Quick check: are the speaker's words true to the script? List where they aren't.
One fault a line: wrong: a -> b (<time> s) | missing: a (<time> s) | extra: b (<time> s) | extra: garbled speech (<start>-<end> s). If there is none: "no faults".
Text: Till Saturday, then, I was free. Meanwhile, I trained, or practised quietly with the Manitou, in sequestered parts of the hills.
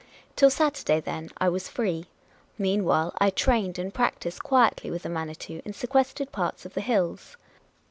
wrong: or -> and (3.8 s)